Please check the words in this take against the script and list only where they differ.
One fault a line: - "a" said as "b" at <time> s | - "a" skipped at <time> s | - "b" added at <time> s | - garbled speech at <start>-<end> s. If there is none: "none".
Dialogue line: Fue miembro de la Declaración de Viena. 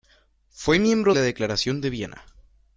- "de" skipped at 1.1 s